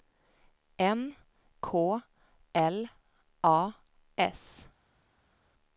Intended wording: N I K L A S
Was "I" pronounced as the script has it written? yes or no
no